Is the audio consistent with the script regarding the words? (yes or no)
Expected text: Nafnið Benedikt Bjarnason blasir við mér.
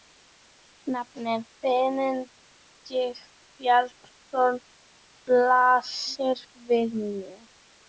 yes